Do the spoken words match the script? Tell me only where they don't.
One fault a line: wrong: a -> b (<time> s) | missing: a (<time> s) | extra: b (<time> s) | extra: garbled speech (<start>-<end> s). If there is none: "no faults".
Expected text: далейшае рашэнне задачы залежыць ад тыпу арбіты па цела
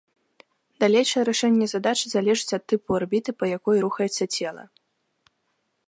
extra: якой рухаецца (3.6 s)